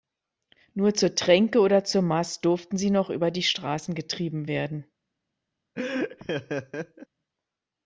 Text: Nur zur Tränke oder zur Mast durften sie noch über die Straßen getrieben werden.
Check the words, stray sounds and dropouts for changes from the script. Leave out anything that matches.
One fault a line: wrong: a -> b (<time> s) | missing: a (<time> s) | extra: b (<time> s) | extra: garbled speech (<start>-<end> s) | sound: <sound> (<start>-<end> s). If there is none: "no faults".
sound: laugh (5.7-7.1 s)